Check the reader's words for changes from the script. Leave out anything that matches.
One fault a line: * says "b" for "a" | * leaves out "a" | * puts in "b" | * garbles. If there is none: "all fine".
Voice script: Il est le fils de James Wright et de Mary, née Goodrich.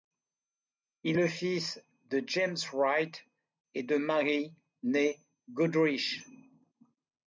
* leaves out "est"